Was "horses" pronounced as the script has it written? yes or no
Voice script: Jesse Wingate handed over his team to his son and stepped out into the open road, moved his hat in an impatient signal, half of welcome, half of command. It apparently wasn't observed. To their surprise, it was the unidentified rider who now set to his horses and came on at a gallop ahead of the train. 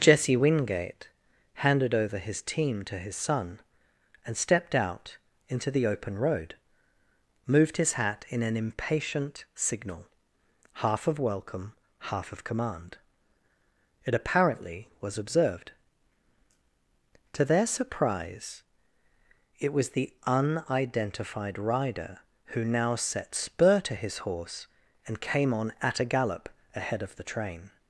no